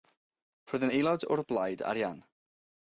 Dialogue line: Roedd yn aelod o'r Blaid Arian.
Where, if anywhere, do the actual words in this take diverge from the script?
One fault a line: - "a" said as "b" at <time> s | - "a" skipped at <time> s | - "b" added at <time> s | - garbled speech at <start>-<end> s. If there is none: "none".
none